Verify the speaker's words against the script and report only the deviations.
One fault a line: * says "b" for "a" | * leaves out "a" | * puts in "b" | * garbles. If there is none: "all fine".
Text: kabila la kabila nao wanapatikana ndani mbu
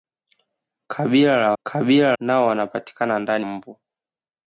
all fine